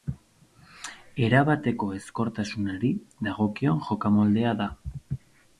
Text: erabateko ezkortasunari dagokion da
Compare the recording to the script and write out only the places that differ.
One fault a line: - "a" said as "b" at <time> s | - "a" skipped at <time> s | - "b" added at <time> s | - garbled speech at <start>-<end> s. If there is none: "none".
- "jokamoldea" added at 3.9 s